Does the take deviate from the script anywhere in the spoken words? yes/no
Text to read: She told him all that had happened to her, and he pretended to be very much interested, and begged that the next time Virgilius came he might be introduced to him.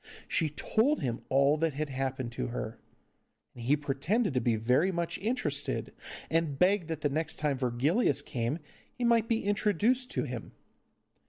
no